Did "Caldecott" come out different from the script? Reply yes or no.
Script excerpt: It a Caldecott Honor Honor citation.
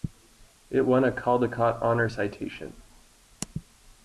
no